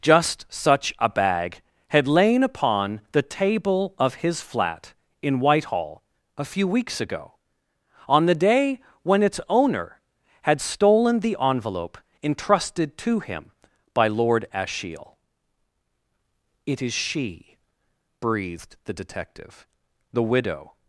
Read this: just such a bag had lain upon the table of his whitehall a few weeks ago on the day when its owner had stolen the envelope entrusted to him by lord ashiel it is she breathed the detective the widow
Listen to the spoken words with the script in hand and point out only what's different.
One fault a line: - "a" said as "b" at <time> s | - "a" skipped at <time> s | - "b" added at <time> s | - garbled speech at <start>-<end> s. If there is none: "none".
- "flat in" added at 4.4 s